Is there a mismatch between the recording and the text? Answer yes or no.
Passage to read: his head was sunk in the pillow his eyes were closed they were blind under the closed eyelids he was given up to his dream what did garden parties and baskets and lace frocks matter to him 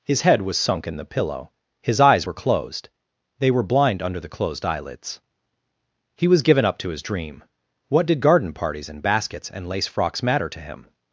no